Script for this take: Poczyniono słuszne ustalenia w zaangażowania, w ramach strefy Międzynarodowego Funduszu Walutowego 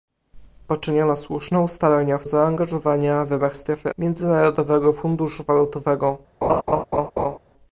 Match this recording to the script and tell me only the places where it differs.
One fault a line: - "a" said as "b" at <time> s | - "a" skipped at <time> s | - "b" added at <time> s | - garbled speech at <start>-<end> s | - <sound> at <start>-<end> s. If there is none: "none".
- laugh at 6.4-7.4 s